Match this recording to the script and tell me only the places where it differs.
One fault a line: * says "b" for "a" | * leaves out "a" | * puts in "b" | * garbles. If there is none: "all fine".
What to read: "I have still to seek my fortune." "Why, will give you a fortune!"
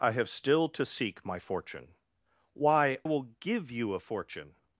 all fine